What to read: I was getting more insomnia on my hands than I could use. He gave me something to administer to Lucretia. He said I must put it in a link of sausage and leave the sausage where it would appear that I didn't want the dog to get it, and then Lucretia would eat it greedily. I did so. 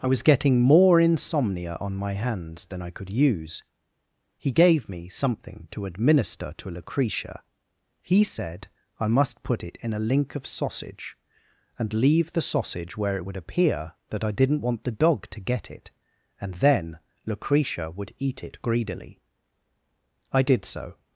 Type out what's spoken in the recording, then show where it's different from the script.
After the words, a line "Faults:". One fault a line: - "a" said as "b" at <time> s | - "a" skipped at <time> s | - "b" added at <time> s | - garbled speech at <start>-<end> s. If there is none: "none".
I was getting more insomnia on my hands than I could use. He gave me something to administer to Lucretia. He said I must put it in a link of sausage and leave the sausage where it would appear that I didn't want the dog to get it, and then Lucretia would eat it greedily. I did so.
Faults:
none